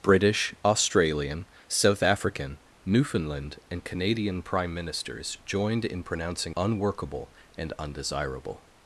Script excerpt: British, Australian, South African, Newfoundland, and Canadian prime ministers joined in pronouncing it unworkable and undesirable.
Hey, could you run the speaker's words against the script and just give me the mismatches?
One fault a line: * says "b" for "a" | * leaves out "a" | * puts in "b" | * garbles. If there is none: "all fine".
* leaves out "it"